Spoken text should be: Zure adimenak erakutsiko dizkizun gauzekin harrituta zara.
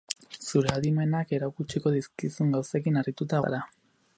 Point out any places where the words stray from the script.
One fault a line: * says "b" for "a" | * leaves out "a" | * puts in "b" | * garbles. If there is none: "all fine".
all fine